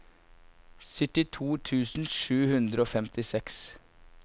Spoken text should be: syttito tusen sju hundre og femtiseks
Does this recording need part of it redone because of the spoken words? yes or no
no